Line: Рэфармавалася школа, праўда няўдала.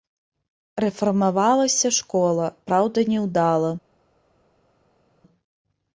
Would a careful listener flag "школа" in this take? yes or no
no